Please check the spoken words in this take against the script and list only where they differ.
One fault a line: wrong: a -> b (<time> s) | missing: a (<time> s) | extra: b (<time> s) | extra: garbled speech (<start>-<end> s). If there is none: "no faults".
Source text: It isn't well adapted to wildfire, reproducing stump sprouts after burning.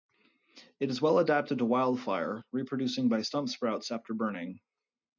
wrong: isn't -> is (0.9 s)
extra: by (3.1 s)